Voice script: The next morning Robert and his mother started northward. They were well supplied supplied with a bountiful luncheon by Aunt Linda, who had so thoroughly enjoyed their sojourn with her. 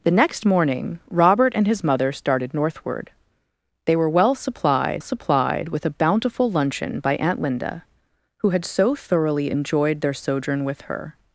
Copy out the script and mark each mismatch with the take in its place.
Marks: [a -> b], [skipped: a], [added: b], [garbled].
The next morning Robert and his mother started northward. They were well supplied supplied with a bountiful luncheon by Aunt Linda, who had so thoroughly enjoyed their sojourn with her.